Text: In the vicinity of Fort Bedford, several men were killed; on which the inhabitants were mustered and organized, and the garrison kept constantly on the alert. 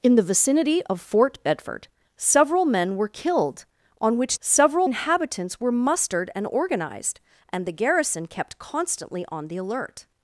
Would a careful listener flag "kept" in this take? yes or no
no